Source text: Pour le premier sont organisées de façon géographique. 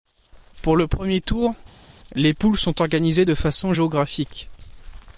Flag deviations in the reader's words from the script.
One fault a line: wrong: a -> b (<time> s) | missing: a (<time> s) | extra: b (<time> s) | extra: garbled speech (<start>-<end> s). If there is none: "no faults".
extra: tour les poules (1.2 s)